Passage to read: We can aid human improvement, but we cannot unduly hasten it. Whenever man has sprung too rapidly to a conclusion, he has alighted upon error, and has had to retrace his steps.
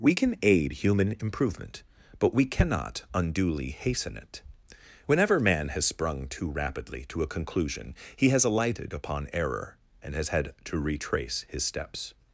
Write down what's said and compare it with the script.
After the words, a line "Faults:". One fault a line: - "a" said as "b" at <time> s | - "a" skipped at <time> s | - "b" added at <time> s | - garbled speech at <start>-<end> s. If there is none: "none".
We can aid human improvement, but we cannot unduly hasten it. Whenever man has sprung too rapidly to a conclusion, he has alighted upon error, and has had to retrace his steps.
Faults:
none